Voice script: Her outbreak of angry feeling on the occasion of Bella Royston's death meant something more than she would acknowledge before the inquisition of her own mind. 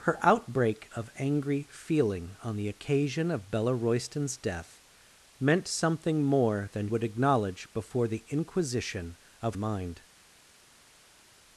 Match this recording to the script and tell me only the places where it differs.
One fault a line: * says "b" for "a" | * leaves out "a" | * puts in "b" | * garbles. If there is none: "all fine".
* leaves out "she"
* leaves out "her own"